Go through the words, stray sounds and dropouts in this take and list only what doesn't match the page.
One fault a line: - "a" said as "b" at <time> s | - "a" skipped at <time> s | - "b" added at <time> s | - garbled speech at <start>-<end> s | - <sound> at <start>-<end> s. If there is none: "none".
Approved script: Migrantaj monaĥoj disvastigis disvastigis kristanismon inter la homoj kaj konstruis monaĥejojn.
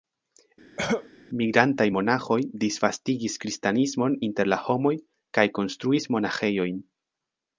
- cough at 0.8-1.1 s
- "disvastigis" skipped at 3.3 s